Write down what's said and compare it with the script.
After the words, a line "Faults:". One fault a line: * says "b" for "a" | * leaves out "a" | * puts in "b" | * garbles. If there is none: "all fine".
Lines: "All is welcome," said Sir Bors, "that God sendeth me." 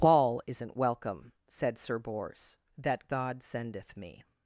"All isn't welcome," said Sir Bors, "that God sendeth me."
Faults:
* says "isn't" for "is"